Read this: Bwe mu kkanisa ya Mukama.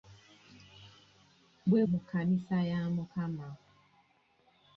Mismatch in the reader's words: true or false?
false